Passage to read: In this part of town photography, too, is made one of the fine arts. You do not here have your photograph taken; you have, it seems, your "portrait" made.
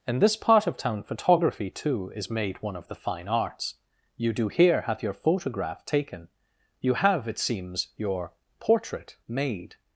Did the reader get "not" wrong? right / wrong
wrong